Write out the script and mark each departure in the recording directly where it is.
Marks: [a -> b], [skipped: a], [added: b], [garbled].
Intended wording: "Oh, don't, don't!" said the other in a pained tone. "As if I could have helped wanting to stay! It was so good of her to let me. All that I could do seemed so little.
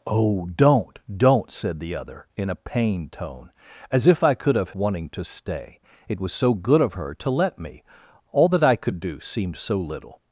"Oh, don't, don't!" said the other in a pained tone. "As if I could have [skipped: helped] wanting to stay! It was so good of her to let me. All that I could do seemed so little.